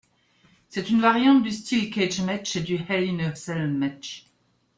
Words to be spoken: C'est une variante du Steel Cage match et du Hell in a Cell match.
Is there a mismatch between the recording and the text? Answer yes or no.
no